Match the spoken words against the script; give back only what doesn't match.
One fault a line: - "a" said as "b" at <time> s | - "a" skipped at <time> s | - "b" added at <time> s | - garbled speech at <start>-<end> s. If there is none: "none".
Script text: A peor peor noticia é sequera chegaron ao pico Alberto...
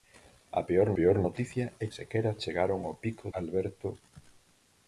none